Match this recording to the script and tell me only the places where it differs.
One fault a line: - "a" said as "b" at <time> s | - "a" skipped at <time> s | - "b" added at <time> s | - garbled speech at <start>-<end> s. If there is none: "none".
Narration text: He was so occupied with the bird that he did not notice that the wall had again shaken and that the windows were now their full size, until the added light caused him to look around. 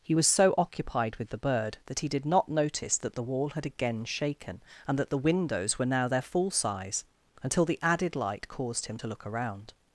none